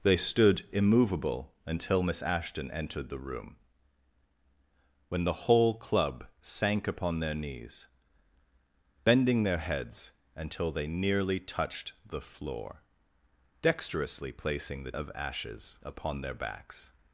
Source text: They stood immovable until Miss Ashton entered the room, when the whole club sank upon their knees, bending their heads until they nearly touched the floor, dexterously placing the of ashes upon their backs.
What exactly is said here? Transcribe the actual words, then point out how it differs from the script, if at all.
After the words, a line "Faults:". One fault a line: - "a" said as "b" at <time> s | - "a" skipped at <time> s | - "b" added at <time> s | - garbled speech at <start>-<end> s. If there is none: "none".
They stood immovable until Miss Ashton entered the room, when the whole club sank upon their knees, bending their heads until they nearly touched the floor, dexterously placing the of ashes upon their backs.
Faults:
none